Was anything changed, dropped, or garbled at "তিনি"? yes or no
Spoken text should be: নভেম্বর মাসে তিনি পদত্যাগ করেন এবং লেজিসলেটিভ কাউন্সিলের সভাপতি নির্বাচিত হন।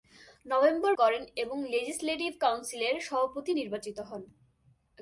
yes